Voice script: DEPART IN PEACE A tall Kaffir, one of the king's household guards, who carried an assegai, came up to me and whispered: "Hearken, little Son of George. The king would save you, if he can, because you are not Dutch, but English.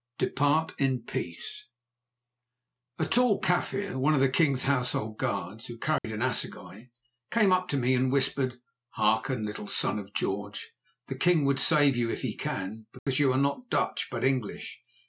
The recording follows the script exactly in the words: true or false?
true